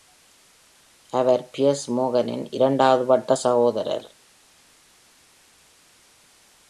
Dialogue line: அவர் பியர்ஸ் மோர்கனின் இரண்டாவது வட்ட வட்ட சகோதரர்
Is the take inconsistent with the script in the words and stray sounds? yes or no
yes